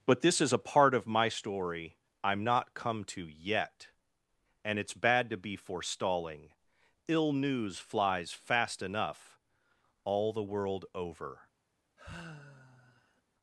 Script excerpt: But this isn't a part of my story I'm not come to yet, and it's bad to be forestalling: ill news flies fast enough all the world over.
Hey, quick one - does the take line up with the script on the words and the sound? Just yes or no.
no